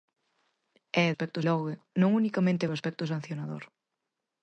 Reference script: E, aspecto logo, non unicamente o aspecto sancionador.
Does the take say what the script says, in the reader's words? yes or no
yes